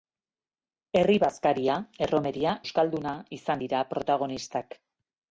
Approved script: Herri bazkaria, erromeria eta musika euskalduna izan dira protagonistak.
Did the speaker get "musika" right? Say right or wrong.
wrong